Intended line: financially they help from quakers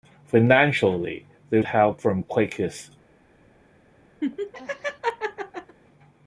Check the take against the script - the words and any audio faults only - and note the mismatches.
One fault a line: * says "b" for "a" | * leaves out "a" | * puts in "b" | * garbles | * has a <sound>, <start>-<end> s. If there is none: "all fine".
* has a laugh, 4.2-5.8 s